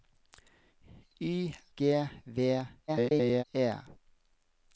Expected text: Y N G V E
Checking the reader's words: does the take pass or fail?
fail